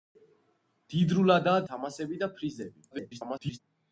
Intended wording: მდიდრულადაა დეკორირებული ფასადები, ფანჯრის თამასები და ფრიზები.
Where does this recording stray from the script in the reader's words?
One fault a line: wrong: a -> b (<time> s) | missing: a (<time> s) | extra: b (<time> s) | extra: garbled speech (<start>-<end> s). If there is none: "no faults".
missing: დეკორირებული ფასადები ფანჯრის (1.6 s)
extra: garbled speech (2.9-3.6 s)